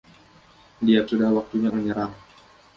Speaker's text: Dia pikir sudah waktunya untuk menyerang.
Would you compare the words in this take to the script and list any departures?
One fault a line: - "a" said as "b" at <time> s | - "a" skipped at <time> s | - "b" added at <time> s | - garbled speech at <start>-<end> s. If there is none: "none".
- "pikir" skipped at 1.1 s
- "untuk" skipped at 1.7 s